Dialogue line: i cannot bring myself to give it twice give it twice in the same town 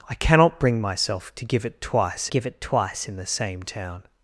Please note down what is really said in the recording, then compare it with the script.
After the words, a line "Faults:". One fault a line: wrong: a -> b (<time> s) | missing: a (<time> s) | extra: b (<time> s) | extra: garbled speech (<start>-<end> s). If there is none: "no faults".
i cannot bring myself to give it twice give it twice in the same town
Faults:
no faults